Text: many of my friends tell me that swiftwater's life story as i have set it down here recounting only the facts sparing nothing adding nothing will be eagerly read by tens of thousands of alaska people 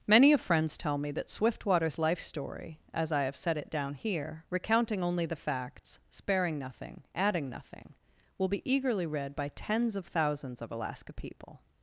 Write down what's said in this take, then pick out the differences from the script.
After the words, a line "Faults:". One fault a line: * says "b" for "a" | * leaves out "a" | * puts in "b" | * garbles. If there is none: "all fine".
many of friends tell me that swiftwater's life story as i have set it down here recounting only the facts sparing nothing adding nothing will be eagerly read by tens of thousands of alaska people
Faults:
* leaves out "my"